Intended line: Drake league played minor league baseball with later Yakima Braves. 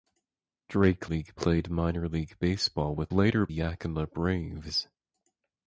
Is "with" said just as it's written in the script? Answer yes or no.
yes